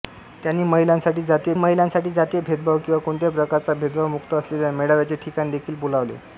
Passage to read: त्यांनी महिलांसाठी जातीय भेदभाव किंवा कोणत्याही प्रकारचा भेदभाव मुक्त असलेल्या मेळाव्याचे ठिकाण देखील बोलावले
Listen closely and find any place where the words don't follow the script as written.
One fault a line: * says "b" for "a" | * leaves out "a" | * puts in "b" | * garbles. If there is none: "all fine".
* puts in "महिलांसाठी जातीय"